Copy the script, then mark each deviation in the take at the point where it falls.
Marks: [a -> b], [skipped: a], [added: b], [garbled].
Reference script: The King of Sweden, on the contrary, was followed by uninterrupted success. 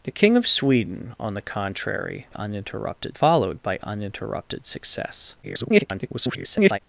The King of Sweden, on the contrary, [was -> uninterrupted] followed by uninterrupted success. [garbled]